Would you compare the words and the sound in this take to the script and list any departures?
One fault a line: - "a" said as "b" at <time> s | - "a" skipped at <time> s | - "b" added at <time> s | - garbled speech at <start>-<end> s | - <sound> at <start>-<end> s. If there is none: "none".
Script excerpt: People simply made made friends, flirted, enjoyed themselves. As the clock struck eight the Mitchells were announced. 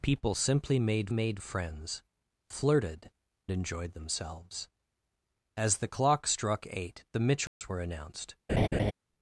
- dropout at 7.5-7.6 s
- laugh at 8.5-8.9 s